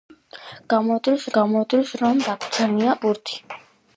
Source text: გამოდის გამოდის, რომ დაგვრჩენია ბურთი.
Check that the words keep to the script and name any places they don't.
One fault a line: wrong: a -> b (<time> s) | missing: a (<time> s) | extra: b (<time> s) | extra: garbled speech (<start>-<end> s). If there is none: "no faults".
no faults